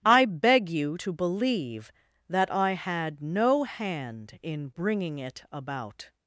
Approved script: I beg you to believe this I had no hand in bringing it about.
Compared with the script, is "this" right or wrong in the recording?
wrong